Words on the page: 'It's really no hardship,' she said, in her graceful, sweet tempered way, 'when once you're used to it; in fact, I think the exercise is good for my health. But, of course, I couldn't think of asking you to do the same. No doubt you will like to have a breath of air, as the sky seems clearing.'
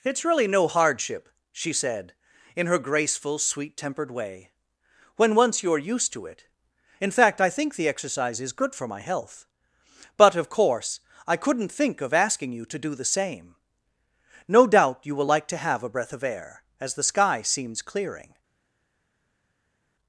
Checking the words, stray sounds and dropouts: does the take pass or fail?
pass